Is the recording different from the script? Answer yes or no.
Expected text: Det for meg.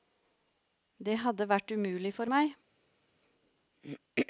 yes